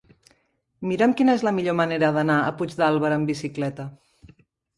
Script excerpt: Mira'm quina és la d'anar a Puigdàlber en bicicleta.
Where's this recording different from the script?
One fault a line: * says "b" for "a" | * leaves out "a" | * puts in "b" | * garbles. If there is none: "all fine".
* puts in "millor manera"
* says "amb" for "en"